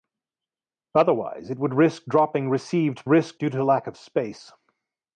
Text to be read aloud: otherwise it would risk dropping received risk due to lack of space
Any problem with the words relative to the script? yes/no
no